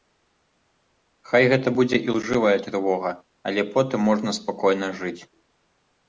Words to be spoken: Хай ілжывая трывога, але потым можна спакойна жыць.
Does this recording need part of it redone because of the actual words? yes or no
yes